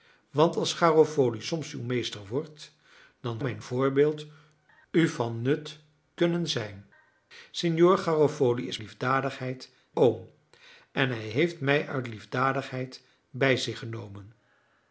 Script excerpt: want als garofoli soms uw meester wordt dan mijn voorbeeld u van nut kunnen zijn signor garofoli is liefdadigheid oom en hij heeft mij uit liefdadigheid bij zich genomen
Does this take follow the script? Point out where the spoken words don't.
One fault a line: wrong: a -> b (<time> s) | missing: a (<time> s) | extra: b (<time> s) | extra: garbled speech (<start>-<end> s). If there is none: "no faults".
no faults